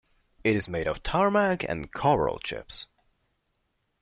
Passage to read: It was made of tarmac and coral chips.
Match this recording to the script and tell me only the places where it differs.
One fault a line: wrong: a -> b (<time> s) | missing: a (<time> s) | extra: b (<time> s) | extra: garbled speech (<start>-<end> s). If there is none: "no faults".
wrong: was -> is (0.6 s)